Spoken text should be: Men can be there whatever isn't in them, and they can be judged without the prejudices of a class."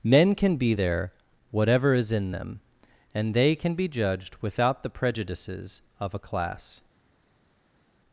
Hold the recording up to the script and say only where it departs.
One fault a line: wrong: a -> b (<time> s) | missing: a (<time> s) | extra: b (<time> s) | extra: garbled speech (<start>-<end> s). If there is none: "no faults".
wrong: isn't -> is (1.9 s)